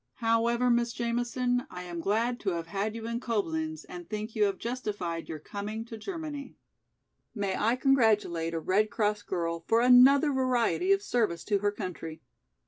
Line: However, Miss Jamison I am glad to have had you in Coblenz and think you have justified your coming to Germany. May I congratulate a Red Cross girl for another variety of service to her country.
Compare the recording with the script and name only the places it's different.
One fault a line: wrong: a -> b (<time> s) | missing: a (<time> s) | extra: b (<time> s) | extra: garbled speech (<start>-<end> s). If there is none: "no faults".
no faults